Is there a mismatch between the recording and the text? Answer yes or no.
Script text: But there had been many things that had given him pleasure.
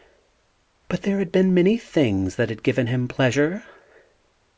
no